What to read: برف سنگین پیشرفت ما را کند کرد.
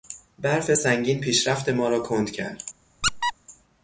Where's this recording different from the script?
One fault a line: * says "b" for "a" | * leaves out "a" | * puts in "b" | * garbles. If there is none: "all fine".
all fine